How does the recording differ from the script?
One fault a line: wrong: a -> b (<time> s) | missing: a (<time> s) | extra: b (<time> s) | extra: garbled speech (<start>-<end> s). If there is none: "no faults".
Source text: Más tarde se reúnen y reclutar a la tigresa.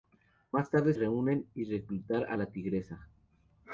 missing: se (0.9 s)